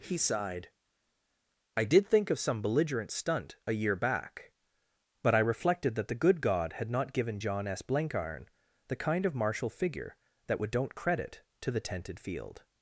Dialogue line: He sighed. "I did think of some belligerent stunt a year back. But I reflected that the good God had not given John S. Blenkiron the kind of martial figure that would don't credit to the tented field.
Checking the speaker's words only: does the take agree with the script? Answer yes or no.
yes